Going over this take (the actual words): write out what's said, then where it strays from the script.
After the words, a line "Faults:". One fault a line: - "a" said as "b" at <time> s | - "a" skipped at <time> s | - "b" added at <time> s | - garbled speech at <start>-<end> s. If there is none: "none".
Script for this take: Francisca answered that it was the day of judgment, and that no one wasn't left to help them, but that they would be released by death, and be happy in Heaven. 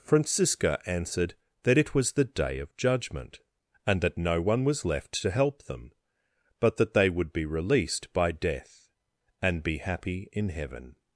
Francisca answered that it was the day of judgment, and that no one was left to help them, but that they would be released by death, and be happy in Heaven.
Faults:
- "wasn't" said as "was" at 4.6 s